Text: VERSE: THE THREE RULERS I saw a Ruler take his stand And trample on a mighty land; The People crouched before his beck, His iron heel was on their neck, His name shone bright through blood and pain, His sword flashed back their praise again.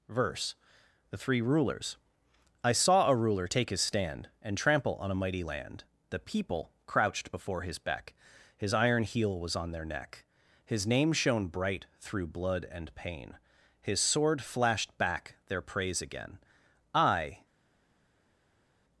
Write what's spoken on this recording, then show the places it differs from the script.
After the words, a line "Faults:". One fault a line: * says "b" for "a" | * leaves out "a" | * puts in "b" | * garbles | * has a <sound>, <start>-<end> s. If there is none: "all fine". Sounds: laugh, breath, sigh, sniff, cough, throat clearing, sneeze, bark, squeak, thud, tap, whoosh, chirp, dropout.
VERSE: THE THREE RULERS I saw a Ruler take his stand And trample on a mighty land; The People crouched before his beck, His iron heel was on their neck, His name shone bright through blood and pain, His sword flashed back their praise again. I
Faults:
* puts in "I"